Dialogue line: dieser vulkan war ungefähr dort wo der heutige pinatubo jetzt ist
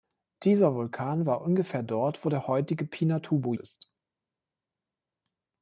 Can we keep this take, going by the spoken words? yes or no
no